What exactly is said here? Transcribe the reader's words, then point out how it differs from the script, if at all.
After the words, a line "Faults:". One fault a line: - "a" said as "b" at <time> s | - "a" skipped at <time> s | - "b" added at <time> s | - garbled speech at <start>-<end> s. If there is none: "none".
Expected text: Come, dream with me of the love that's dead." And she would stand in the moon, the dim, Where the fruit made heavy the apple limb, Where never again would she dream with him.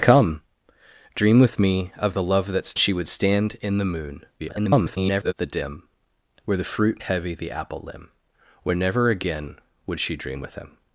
Come, dream with me of the love that's she would stand in the moon, [garbled] the dim, Where the fruit heavy the apple limb, Where never again would she dream with him.
Faults:
- "dead And" skipped at 2.7 s
- garbled speech at 4.4-5.3 s
- "made" skipped at 7.0 s